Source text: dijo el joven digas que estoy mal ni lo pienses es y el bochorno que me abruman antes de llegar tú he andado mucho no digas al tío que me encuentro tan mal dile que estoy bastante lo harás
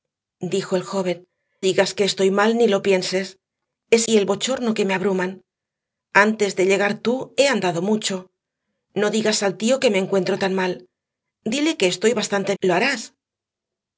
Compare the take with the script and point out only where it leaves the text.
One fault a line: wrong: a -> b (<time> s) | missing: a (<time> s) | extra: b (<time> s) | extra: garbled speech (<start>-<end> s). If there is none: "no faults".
no faults